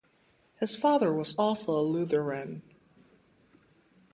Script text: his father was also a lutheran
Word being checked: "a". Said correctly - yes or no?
yes